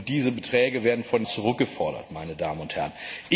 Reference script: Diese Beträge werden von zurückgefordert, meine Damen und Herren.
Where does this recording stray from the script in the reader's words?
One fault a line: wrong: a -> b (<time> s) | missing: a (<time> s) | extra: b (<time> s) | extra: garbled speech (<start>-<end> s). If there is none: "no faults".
no faults